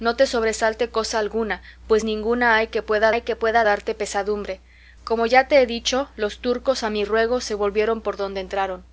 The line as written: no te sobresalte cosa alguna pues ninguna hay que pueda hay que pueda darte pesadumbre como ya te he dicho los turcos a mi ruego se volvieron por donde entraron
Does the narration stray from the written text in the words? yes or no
no